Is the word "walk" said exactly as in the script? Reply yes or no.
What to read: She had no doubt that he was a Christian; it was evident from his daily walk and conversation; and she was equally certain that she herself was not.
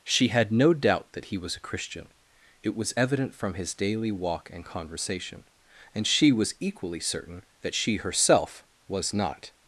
yes